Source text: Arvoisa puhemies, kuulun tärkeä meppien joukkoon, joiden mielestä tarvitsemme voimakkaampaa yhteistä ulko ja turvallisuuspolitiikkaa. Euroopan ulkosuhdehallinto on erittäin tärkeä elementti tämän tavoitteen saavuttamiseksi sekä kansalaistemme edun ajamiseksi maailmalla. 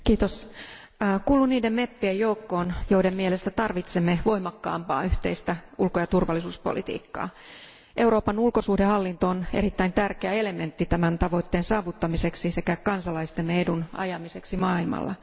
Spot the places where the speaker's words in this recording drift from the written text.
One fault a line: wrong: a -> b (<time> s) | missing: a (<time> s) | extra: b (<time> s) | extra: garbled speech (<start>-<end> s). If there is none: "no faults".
wrong: tärkeä -> niiden (1.5 s)